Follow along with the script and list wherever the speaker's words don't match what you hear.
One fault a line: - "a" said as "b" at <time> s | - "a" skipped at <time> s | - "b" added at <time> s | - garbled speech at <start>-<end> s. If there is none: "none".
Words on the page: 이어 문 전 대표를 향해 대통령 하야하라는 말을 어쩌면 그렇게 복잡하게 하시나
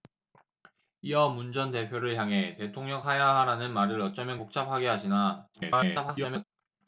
- "그렇게" skipped at 4.4 s
- garbled speech at 5.5-6.4 s